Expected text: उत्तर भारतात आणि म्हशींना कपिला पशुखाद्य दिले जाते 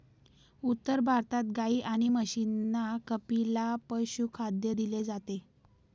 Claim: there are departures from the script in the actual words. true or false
true